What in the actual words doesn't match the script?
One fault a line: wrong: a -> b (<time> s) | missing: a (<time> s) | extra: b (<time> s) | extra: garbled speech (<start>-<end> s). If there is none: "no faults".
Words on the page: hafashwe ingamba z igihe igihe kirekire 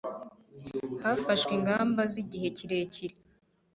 missing: igihe (2.5 s)